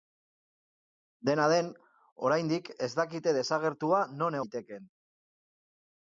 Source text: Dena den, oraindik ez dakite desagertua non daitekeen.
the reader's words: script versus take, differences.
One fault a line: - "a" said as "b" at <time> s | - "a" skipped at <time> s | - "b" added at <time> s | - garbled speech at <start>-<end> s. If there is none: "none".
none